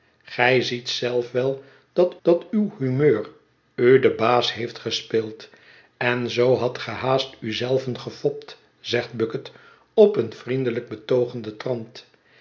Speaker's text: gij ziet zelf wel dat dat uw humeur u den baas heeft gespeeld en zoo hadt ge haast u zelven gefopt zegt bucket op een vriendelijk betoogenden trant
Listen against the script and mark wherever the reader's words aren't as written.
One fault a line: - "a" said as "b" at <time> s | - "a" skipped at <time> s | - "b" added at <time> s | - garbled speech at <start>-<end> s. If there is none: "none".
none